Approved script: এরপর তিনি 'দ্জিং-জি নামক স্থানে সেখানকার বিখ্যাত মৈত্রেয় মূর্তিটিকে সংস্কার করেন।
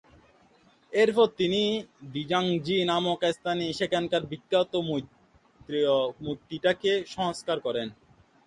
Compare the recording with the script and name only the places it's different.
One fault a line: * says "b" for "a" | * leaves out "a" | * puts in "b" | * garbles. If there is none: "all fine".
all fine